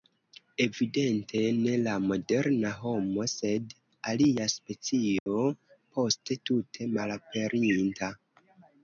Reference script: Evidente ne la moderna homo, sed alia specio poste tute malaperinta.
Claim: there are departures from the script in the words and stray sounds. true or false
true